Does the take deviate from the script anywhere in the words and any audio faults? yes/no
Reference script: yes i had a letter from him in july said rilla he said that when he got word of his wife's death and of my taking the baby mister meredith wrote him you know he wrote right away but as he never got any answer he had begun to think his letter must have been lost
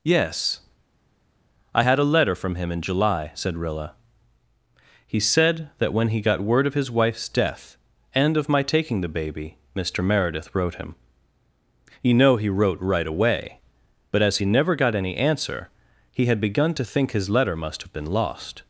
no